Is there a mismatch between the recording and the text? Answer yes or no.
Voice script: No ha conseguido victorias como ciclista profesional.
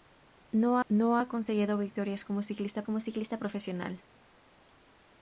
yes